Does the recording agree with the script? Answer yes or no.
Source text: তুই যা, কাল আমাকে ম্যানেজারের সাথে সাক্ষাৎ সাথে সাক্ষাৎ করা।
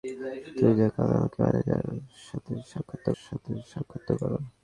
yes